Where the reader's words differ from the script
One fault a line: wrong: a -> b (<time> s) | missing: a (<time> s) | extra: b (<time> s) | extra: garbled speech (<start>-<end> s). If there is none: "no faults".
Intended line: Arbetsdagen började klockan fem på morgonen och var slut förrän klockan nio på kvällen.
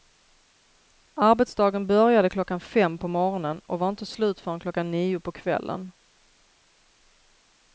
extra: inte (3.9 s)